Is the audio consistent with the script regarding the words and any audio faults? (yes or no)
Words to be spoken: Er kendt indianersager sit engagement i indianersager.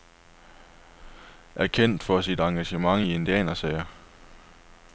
no